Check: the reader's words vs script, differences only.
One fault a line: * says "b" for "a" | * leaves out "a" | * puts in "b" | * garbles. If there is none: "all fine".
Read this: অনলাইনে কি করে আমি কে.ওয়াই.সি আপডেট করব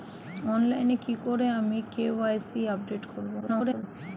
* garbles